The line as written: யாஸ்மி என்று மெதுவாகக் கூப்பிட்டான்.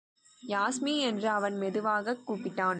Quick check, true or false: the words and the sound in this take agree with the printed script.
false